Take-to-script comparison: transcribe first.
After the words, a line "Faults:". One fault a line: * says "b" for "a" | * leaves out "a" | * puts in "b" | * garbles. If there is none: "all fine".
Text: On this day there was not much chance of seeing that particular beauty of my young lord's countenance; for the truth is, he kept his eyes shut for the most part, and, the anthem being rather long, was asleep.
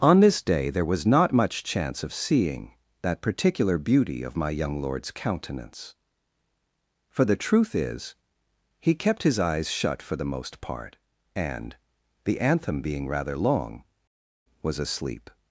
On this day there was not much chance of seeing that particular beauty of my young lord's countenance; for the truth is, he kept his eyes shut for the most part, and, the anthem being rather long, was asleep.
Faults:
all fine